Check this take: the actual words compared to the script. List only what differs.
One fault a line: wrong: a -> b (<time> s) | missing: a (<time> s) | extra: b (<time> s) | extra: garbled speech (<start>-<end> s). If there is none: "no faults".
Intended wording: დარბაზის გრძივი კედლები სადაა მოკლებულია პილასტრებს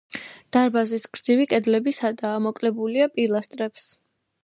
no faults